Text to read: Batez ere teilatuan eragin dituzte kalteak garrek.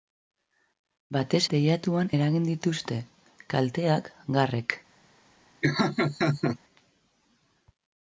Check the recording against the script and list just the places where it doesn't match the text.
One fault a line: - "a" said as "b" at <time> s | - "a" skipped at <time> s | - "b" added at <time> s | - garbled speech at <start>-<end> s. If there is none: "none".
- "ere" skipped at 1.4 s